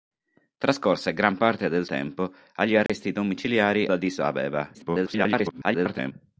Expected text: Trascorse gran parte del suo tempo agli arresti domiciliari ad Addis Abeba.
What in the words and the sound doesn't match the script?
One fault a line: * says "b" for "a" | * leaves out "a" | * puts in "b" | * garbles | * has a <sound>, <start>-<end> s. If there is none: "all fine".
* leaves out "suo"
* has a dropout, 2.9-2.9 s
* leaves out "ad"
* garbles